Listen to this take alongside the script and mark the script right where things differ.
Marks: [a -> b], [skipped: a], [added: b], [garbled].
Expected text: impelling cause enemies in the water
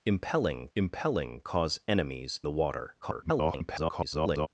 impelling [added: impelling] cause enemies [skipped: in] the water [garbled]